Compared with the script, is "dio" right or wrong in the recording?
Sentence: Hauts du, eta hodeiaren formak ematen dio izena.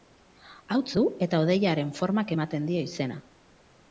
right